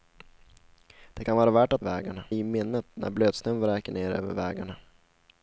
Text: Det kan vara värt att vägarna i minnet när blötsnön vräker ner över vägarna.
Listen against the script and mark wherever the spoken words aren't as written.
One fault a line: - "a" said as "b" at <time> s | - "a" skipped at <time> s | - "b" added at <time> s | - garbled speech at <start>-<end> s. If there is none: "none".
none